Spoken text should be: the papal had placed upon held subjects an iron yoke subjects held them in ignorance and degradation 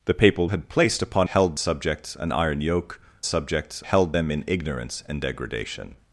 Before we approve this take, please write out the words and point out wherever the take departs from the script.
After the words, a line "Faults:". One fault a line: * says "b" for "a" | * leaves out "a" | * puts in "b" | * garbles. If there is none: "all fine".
the papal had placed upon held subjects an iron yoke subjects held them in ignorance and degradation
Faults:
all fine